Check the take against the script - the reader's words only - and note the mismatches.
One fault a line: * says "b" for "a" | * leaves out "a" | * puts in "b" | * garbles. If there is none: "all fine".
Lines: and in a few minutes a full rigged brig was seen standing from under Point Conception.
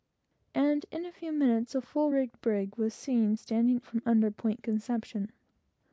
all fine